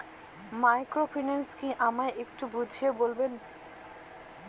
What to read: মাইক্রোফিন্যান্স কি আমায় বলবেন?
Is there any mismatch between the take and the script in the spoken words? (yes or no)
yes